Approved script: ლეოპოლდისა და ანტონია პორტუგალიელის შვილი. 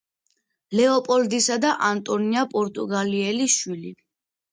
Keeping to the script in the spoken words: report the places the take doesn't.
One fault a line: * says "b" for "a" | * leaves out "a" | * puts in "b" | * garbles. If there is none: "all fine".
all fine